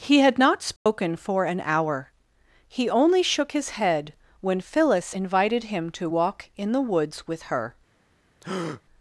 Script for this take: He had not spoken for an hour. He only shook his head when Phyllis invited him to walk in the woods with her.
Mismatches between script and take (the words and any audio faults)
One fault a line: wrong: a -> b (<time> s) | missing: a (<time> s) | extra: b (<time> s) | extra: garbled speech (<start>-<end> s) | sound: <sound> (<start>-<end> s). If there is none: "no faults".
sound: dropout (0.8-0.9 s)
sound: breath (8.4-8.8 s)